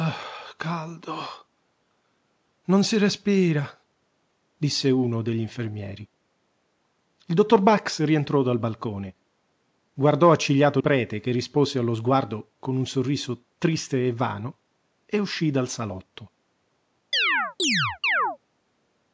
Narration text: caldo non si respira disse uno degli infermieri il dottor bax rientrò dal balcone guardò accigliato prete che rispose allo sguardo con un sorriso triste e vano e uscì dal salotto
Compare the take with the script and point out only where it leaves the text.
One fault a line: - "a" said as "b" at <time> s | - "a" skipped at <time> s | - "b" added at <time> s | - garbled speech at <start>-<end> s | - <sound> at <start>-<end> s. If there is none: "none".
- chirp at 17.1-18.4 s